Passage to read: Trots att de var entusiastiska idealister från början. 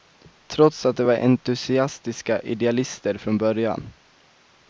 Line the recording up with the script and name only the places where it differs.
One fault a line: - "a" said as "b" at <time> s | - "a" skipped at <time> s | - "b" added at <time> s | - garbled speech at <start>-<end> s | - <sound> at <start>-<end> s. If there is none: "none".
none